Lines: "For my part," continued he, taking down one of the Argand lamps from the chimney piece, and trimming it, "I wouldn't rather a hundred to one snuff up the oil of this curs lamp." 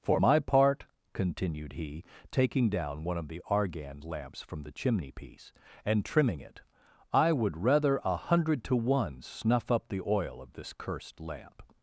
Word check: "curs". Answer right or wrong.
wrong